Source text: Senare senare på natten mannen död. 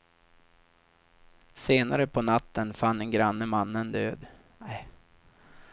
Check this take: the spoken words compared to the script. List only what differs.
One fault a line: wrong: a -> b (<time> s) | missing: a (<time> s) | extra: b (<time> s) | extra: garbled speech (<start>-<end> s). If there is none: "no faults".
missing: senare (2.1 s)
extra: fann en granne (2.7 s)